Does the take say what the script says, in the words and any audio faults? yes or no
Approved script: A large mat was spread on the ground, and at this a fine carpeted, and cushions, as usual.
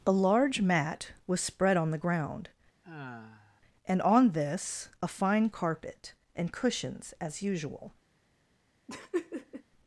no